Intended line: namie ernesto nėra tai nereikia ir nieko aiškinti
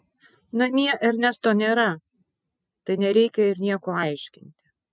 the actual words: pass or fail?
pass